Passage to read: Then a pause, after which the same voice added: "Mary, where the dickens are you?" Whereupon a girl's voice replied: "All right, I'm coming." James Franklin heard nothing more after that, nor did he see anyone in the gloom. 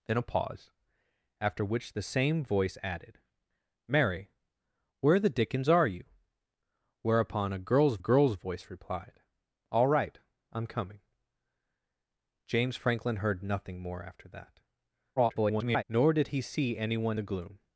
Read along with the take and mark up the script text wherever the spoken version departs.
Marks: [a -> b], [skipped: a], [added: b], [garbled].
Then a pause, after which the same voice added: "Mary, where the dickens are you?" Whereupon a girl's [added: girl's] voice replied: "All right, I'm coming." James Franklin heard nothing more after that, [garbled] nor did he see anyone [skipped: in] the gloom.